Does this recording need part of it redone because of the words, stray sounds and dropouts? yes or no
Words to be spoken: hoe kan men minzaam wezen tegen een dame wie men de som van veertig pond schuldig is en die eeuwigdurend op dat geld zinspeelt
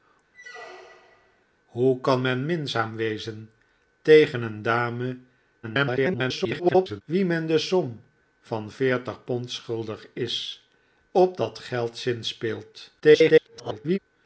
yes